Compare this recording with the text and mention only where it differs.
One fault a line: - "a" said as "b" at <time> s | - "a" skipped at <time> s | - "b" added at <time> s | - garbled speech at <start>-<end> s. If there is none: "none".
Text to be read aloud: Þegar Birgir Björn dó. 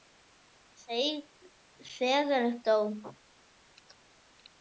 - "Birgir Björn" skipped at 2.5 s